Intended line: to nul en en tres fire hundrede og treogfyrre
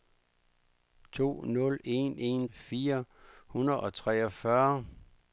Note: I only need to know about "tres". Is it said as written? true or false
false